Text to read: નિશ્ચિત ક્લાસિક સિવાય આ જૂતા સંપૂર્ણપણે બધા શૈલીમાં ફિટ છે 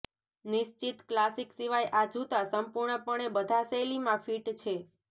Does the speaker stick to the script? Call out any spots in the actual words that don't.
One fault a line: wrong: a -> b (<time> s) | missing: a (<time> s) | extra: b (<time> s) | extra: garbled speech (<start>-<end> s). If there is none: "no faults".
no faults